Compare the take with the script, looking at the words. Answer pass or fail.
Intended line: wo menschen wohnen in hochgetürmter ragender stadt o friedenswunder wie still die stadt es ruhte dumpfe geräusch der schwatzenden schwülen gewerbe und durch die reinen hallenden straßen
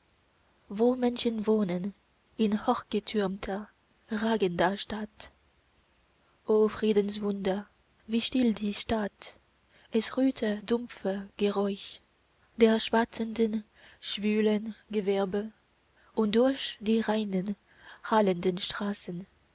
pass